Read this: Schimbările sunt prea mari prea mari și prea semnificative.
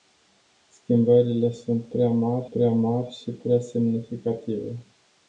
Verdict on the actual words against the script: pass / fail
pass